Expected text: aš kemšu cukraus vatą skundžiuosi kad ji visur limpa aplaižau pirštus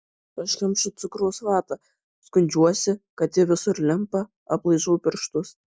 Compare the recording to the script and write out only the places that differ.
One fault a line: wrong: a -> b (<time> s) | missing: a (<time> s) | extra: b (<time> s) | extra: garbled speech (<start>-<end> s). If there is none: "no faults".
no faults